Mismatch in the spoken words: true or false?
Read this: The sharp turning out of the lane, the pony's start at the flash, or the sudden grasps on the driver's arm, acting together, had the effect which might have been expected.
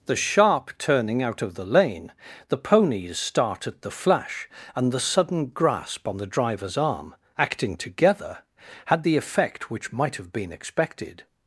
true